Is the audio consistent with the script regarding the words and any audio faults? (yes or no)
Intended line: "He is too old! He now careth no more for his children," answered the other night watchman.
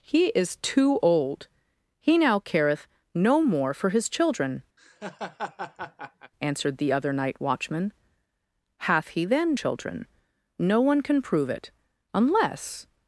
no